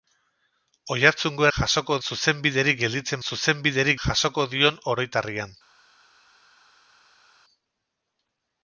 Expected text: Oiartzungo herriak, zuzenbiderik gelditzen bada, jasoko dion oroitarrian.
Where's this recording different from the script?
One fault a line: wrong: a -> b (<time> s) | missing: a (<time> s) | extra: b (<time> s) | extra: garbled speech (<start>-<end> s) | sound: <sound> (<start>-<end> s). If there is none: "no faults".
wrong: herriak -> jasoko (1.6 s)
wrong: bada -> zuzenbiderik (3.3 s)